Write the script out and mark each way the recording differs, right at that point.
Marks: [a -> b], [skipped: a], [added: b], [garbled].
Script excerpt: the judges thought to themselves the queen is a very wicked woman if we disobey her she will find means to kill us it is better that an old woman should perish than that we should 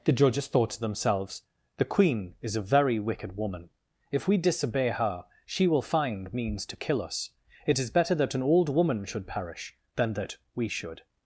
the judges thought to themselves the queen is a very wicked woman if we disobey her she will find means to kill us it is better that an old woman should perish than that we should